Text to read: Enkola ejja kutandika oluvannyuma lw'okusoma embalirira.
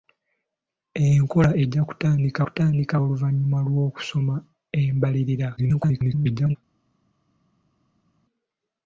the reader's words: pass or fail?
fail